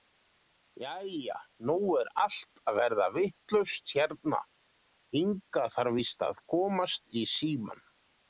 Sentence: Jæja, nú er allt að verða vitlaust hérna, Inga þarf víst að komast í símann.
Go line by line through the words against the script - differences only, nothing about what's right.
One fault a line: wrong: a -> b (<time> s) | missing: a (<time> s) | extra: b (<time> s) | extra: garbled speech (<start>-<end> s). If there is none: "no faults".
no faults